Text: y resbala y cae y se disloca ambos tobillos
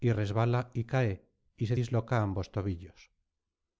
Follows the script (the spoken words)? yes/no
yes